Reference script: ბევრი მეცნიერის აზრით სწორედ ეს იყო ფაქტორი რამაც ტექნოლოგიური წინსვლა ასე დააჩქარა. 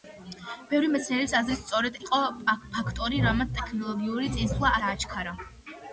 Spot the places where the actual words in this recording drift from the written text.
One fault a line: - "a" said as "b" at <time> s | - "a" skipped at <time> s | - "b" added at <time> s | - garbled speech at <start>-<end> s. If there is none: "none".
- "ეს" skipped at 2.0 s
- "ასე" skipped at 4.8 s